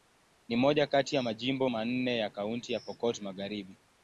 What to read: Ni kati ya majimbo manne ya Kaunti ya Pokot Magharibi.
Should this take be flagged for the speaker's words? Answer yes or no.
yes